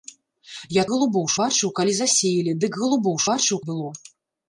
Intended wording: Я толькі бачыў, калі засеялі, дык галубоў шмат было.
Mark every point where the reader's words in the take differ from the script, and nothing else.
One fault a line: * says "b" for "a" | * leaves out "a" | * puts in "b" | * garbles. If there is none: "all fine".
* says "галубоў" for "толькі"
* says "бачыў" for "шмат"